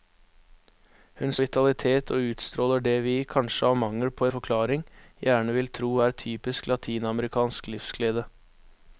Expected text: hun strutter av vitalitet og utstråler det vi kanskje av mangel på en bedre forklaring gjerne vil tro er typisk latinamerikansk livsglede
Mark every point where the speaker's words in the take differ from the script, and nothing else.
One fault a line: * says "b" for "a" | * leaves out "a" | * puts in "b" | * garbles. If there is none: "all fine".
* leaves out "strutter av"
* leaves out "en bedre"